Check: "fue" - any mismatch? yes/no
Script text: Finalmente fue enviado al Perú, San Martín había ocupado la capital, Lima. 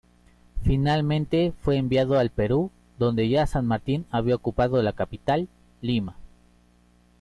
no